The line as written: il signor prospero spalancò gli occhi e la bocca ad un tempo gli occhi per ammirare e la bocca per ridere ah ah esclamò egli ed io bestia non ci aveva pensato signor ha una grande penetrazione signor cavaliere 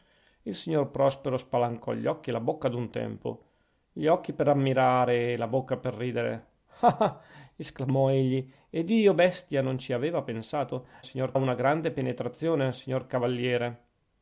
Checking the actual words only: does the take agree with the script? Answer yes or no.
yes